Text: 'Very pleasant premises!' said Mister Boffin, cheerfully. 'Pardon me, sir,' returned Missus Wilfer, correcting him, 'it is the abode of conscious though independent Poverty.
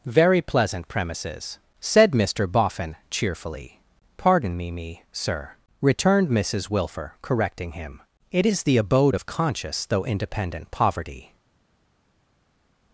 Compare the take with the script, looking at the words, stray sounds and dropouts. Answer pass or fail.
fail